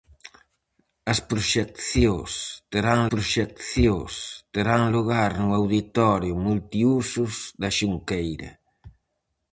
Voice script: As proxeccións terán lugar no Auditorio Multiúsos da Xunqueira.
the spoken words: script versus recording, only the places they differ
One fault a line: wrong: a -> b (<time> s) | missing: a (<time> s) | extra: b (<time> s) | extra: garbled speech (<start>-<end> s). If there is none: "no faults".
extra: proxeccións terán (3.1 s)